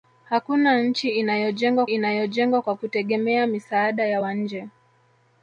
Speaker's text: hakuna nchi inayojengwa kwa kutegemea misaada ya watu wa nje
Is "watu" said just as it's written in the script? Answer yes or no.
no